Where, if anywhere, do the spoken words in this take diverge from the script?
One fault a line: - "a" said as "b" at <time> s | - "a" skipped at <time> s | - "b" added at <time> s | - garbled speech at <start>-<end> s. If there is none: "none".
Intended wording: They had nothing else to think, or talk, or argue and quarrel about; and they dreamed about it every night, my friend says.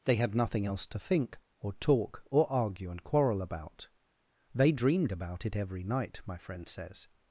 - "and" skipped at 3.9 s